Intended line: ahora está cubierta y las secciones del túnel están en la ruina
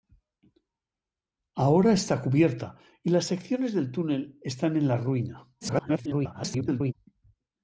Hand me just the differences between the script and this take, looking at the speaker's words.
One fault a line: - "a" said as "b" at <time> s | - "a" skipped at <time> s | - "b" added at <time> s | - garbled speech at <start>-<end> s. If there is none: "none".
- garbled speech at 5.6-6.9 s